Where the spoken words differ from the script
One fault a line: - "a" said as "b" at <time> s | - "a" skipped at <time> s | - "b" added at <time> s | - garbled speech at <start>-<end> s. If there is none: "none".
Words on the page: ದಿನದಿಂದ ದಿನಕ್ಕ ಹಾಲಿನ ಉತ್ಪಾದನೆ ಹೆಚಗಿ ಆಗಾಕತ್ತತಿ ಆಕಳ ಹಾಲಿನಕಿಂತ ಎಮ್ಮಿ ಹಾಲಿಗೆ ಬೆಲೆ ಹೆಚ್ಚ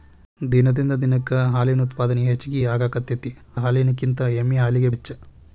- "ಆಕಳ" skipped at 3.3 s
- "ಬೆಲೆ" skipped at 4.9 s